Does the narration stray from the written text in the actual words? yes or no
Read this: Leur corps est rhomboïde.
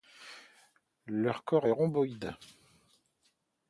no